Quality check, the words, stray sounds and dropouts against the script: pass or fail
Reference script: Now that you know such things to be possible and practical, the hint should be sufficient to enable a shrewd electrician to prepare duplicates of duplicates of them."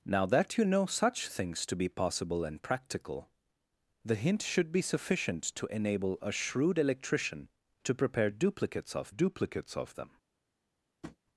fail